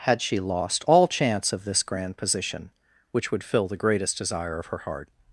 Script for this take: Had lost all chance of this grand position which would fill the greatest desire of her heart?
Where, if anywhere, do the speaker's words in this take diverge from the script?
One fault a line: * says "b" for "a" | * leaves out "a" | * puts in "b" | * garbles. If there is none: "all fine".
* puts in "she"